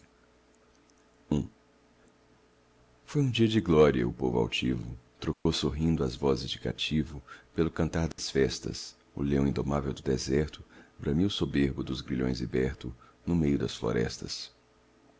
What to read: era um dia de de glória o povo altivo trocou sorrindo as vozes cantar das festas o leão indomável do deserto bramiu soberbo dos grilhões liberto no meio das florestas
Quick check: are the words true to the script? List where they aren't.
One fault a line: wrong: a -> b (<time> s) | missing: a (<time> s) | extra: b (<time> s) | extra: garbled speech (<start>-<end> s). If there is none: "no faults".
wrong: era -> foi (3.0 s)
missing: de (3.6 s)
extra: de cativo pelo (6.5 s)